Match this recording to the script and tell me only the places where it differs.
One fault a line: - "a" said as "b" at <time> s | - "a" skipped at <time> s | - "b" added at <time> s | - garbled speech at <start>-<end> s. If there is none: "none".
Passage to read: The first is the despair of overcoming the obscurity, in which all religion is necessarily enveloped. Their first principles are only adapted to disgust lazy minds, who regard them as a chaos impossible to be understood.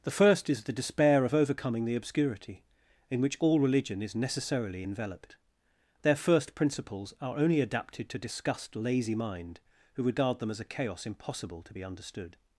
- "minds" said as "mind" at 9.1 s